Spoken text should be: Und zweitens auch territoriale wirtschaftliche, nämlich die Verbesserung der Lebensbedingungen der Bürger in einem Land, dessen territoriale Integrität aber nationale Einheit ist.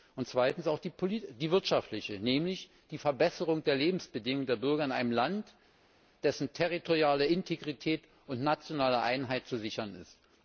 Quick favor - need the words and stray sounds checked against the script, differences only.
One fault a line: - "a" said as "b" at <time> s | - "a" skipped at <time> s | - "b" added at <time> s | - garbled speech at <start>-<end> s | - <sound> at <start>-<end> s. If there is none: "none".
- "territoriale" said as "die" at 0.8 s
- "aber" said as "und" at 8.3 s
- "zu sichern" added at 9.5 s